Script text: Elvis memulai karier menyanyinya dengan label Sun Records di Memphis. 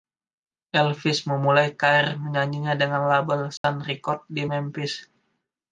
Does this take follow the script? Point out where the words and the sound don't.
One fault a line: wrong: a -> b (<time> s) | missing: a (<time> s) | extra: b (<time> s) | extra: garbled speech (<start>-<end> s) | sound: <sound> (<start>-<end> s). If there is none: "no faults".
sound: dropout (3.6-3.6 s)